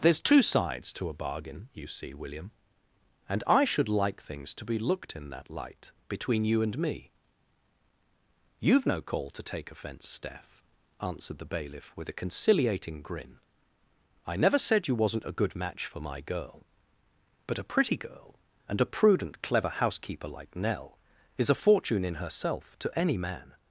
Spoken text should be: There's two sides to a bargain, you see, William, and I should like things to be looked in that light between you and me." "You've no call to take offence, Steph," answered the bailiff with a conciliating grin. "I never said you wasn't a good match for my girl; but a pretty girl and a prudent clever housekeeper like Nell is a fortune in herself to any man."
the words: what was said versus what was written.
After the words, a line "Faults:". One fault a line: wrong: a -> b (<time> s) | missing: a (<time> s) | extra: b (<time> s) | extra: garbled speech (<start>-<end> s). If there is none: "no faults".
There's two sides to a bargain, you see, William, and I should like things to be looked in that light between you and me." "You've no call to take offence, Steph," answered the bailiff with a conciliating grin. "I never said you wasn't a good match for my girl; but a pretty girl and a prudent clever housekeeper like Nell is a fortune in herself to any man."
Faults:
no faults